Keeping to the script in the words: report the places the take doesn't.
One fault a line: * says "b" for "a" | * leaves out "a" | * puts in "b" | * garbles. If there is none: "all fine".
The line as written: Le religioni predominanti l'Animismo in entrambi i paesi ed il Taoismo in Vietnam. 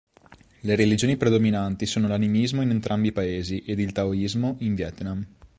* puts in "sono"